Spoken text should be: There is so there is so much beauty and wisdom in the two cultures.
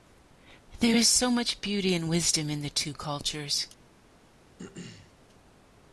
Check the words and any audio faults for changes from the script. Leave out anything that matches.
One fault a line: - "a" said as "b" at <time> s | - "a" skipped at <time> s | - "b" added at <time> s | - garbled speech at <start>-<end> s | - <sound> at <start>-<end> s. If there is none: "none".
- "there is so" skipped at 1.3 s
- throat clearing at 4.6-5.1 s